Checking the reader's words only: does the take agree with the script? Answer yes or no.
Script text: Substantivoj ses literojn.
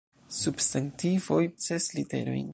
yes